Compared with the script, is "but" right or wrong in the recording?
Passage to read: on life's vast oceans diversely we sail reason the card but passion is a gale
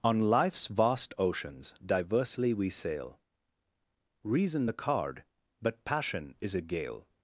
right